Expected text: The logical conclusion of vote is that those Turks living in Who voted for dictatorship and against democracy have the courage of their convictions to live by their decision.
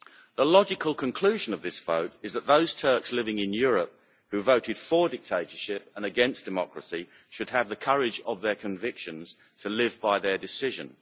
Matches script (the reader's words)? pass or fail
fail